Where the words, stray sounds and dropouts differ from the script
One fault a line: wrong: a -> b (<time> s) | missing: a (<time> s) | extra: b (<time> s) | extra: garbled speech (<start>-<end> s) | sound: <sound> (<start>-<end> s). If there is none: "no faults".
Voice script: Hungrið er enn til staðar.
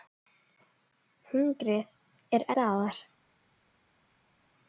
missing: enn til (2.5 s)